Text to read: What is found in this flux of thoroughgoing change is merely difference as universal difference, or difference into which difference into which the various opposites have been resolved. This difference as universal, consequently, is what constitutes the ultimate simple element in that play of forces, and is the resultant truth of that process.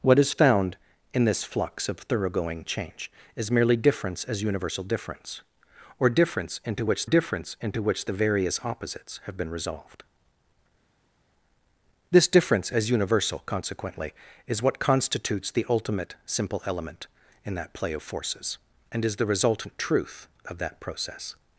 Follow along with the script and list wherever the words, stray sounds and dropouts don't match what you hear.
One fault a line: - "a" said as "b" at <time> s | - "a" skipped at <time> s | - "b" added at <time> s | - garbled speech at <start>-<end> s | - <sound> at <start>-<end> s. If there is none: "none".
none